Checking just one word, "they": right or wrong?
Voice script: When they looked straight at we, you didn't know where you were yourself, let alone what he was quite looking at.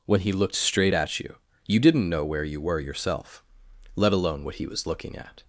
wrong